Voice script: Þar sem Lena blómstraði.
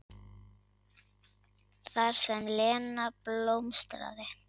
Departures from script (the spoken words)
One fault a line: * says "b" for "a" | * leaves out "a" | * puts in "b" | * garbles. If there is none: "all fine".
all fine